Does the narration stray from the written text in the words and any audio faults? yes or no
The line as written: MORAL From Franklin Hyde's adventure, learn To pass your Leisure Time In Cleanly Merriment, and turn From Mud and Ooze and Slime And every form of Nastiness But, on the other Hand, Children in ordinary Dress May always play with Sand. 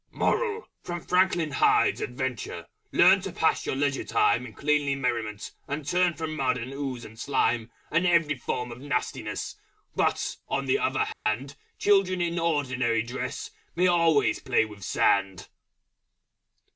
yes